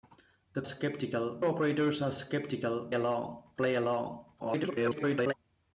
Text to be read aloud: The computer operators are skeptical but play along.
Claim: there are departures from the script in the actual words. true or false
true